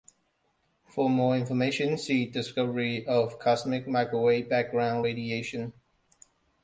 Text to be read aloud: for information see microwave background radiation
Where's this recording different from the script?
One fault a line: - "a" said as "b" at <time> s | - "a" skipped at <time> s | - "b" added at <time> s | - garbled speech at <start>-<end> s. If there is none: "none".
- "more" added at 1.1 s
- "discovery of cosmic" added at 2.2 s